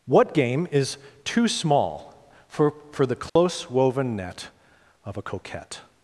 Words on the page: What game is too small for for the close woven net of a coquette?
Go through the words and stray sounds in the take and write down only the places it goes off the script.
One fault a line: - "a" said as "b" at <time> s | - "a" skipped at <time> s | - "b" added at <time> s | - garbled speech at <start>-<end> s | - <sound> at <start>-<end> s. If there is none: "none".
- dropout at 3.3-3.4 s